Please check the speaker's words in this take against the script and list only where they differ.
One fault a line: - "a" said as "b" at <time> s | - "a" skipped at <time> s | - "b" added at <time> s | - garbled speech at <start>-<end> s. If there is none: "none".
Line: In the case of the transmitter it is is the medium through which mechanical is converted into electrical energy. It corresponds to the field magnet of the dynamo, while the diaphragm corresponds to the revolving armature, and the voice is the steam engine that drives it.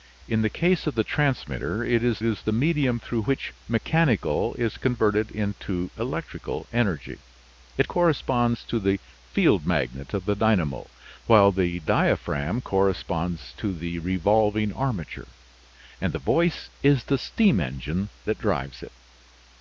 none